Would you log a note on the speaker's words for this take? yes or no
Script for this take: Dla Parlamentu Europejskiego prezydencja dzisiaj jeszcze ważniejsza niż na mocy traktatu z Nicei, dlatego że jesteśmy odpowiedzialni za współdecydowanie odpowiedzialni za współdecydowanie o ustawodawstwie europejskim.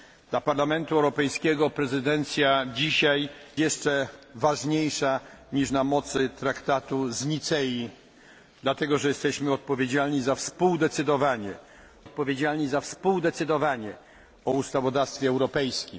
no